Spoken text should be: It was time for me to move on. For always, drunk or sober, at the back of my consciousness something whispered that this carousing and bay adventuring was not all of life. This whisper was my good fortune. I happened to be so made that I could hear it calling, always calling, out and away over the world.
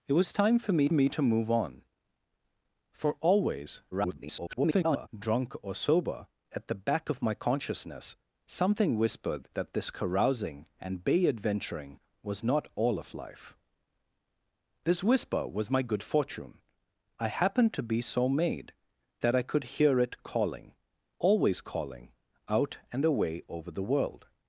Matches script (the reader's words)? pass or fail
fail